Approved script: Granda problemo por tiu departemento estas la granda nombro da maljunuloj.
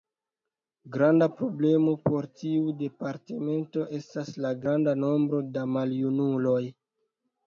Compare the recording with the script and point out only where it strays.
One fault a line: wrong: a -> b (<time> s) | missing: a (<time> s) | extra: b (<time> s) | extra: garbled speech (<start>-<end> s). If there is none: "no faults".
no faults